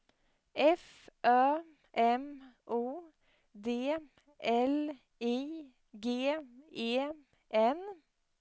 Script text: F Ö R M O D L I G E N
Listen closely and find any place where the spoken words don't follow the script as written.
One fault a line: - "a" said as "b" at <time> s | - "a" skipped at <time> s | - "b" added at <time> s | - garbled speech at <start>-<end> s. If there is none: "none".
- "R" skipped at 1.6 s